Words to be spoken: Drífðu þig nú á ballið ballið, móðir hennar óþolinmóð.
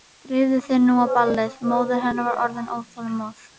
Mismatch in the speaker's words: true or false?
true